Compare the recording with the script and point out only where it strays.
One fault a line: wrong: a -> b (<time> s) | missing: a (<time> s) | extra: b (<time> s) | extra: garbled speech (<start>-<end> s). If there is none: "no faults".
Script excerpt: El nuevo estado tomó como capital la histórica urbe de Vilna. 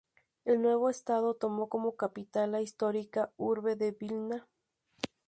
no faults